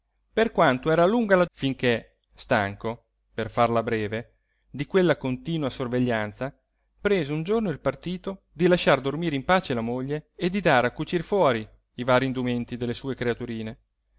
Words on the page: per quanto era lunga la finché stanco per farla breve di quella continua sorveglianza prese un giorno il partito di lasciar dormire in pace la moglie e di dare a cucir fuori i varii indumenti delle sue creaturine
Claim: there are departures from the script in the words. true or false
false